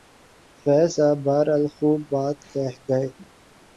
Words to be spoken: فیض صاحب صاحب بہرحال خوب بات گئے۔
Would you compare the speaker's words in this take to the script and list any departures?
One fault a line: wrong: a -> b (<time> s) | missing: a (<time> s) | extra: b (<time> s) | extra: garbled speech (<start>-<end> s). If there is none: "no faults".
missing: صاحب (1.2 s)
extra: کہہ (2.5 s)